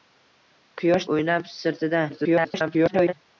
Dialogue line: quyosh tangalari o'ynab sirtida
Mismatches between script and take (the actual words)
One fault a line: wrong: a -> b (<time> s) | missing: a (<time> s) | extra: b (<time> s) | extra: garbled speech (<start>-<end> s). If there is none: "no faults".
missing: tangalari (1.1 s)
extra: garbled speech (2.1-3.1 s)